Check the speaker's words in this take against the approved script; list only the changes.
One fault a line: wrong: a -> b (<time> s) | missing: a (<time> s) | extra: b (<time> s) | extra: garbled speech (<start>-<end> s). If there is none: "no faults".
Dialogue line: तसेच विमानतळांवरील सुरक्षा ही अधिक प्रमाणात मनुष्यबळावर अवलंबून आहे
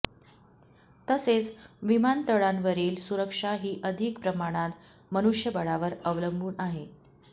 no faults